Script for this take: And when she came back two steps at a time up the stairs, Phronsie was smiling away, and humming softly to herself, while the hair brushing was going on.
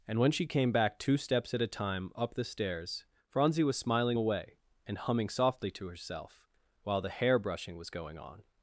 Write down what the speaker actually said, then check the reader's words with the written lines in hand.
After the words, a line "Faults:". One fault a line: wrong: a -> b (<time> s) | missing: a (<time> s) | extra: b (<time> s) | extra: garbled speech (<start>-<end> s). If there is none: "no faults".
And when she came back two steps at a time up the stairs, Phronsie was smiling away, and humming softly to herself, while the hair brushing was going on.
Faults:
no faults